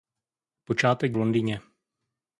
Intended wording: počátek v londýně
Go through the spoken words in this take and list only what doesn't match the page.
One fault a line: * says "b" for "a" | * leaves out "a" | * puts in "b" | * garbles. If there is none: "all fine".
all fine